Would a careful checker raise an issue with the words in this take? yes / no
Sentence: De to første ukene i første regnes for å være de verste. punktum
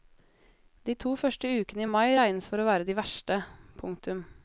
yes